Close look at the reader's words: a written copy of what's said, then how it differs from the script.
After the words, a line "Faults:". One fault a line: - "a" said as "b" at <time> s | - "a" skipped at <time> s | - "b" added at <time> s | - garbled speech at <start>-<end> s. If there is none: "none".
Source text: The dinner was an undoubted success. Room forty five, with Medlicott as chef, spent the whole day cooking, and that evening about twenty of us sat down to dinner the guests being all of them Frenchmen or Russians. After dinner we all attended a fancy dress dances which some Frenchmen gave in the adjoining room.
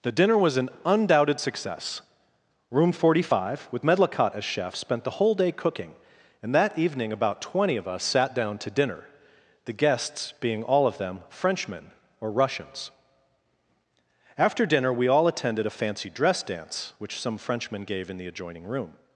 The dinner was an undoubted success. Room forty five, with Medlicott as chef, spent the whole day cooking, and that evening about twenty of us sat down to dinner the guests being all of them Frenchmen or Russians. After dinner we all attended a fancy dress dance which some Frenchmen gave in the adjoining room.
Faults:
- "dances" said as "dance" at 16.4 s